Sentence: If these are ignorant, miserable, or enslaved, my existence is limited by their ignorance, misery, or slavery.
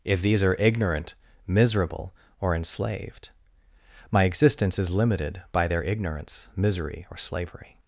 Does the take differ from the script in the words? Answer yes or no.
no